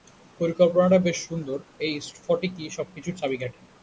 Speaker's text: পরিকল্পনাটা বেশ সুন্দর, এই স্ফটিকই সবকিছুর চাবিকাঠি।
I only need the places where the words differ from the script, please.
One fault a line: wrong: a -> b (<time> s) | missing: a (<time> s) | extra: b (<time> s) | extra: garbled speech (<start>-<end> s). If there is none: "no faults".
no faults